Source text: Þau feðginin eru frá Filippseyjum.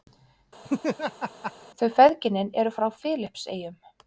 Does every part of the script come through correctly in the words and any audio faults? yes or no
no